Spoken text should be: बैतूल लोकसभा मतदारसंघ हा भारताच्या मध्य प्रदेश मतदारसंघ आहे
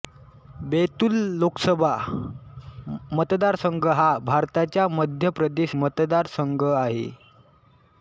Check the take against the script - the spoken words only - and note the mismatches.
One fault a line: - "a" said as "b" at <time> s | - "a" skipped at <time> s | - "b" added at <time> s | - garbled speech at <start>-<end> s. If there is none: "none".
none